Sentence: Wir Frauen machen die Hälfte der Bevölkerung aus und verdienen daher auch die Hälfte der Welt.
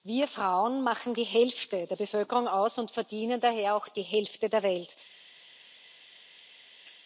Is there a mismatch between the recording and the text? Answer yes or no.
no